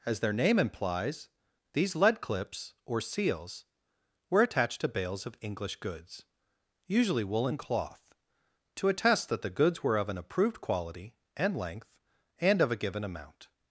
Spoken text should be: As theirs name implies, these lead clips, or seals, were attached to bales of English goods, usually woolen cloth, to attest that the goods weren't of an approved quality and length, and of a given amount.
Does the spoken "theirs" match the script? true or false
false